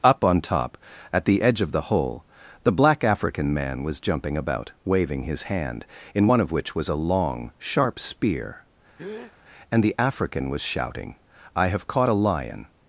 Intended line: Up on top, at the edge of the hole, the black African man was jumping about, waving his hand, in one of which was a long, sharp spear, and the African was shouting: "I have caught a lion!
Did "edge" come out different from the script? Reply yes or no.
no